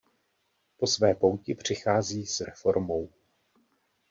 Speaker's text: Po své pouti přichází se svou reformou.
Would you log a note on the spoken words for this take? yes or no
yes